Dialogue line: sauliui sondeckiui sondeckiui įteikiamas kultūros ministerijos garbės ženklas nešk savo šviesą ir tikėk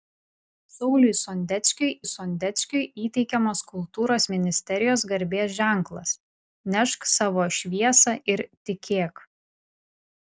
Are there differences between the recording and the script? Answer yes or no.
no